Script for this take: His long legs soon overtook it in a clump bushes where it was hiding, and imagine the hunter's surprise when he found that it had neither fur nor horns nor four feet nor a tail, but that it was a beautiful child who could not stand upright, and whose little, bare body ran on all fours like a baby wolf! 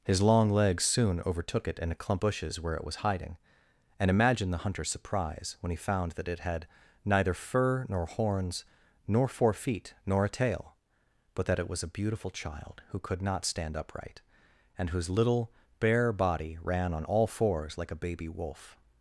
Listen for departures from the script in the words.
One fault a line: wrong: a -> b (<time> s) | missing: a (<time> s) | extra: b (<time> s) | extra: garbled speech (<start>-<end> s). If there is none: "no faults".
no faults